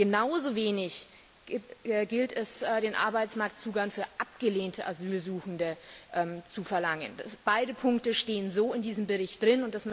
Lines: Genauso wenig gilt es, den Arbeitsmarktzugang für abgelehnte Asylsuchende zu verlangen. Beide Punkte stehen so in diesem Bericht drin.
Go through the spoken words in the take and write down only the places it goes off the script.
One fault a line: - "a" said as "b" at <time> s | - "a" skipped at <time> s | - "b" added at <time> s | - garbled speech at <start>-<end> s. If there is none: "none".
none